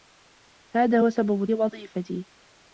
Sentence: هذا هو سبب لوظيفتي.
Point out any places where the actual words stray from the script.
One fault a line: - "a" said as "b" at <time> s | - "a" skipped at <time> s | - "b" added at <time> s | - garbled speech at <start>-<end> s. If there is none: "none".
none